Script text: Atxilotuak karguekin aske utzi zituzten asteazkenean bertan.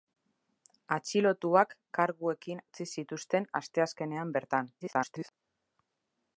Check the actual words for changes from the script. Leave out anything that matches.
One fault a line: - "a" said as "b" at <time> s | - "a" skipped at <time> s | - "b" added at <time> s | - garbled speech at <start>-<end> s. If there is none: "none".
- "aske" skipped at 2.6 s
- garbled speech at 4.8-5.3 s